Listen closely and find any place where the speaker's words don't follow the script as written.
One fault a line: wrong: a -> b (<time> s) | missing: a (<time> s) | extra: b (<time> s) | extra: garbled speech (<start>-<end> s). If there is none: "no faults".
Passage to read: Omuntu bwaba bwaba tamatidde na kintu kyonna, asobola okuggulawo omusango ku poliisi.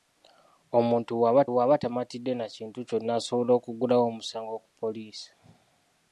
no faults